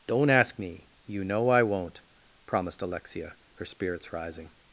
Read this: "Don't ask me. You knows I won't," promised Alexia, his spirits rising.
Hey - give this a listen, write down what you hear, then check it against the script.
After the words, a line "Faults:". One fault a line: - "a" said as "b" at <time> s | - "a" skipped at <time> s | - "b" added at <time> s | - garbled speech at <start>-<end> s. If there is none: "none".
"Don't ask me. You know I won't," promised Alexia, her spirits rising.
Faults:
- "knows" said as "know" at 1.2 s
- "his" said as "her" at 3.5 s